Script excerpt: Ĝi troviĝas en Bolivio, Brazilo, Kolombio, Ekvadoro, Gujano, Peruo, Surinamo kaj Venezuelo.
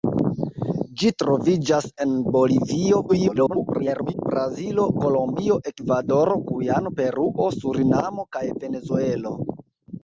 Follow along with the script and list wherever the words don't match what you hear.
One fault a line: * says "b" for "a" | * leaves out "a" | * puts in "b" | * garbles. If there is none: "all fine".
* garbles